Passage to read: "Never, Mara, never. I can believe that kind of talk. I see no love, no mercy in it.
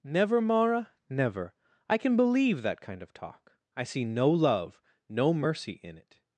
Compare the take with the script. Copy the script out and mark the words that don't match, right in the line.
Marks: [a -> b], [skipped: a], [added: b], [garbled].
"Never, Mara, never. I can believe that kind of talk. I see no love, no mercy in it.